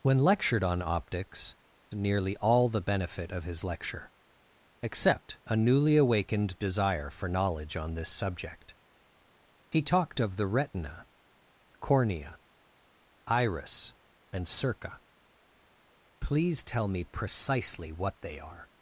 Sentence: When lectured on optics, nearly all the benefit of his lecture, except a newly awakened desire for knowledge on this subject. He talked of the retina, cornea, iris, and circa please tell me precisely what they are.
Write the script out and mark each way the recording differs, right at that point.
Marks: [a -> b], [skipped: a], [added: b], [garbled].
When lectured on optics, nearly all the benefit of his lecture, except a newly awakened desire for knowledge on this subject. He talked of the retina, cornea, iris, and circa please tell me precisely what they are.